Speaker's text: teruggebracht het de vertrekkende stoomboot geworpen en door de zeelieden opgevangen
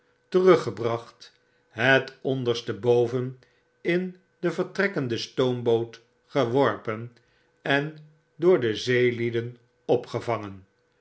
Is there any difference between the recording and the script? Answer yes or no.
yes